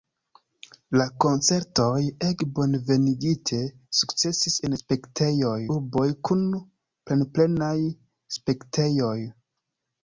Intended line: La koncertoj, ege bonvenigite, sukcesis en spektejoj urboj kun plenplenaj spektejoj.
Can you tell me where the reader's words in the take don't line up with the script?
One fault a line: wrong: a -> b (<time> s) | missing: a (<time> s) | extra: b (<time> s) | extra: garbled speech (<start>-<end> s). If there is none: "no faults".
no faults